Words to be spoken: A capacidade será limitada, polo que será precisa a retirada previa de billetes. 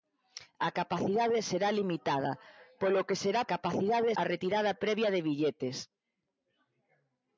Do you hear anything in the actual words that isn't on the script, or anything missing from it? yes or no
yes